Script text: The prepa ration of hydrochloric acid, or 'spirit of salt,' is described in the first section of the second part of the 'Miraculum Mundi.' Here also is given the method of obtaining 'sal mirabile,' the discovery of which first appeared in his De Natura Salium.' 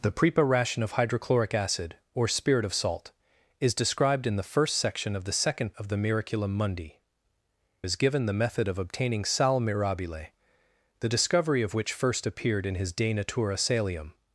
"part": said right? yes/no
no